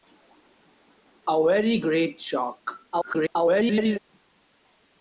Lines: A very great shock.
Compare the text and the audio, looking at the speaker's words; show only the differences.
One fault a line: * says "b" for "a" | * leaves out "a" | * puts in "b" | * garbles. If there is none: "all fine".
* garbles